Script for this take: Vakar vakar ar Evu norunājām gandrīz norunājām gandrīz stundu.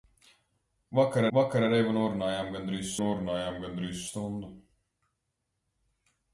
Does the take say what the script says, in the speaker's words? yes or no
yes